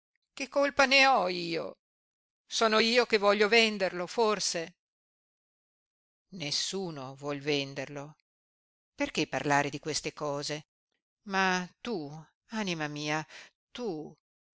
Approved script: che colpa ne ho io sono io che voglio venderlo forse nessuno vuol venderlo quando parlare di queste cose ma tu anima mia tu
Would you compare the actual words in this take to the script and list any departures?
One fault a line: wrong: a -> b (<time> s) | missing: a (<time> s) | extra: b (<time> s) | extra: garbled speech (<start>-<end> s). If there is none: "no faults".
wrong: quando -> perché (8.9 s)